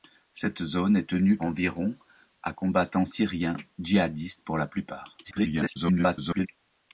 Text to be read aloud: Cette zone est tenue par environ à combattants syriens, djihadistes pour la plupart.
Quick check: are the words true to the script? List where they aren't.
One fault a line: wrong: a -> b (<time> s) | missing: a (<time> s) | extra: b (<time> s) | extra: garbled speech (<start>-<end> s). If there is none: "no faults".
missing: par (1.4 s)
extra: garbled speech (5.2-6.5 s)